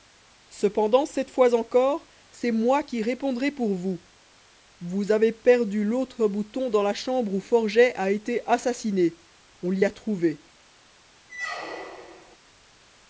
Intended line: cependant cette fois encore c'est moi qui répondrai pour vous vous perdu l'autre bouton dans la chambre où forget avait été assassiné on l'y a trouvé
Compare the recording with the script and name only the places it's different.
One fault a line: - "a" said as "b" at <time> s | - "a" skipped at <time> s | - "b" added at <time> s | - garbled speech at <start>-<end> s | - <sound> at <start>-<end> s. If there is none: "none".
- "avez" added at 5.1 s
- "avait" said as "a" at 8.0 s
- squeak at 11.3-12.4 s